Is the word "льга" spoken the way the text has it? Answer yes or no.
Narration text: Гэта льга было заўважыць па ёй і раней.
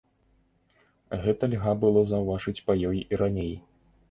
yes